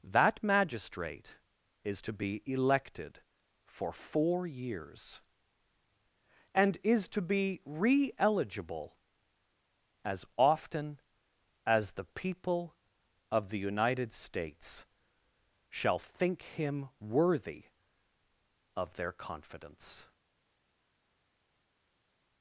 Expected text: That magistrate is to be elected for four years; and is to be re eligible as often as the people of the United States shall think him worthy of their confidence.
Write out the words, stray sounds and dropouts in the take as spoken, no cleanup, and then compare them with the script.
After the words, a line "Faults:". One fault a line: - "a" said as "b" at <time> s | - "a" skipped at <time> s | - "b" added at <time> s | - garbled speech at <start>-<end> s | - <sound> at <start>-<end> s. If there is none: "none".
That magistrate is to be elected for four years; and is to be re eligible as often as the people of the United States shall think him worthy of their confidence.
Faults:
none